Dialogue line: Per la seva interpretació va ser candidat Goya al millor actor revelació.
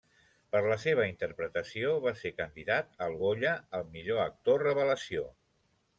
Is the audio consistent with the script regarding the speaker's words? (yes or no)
no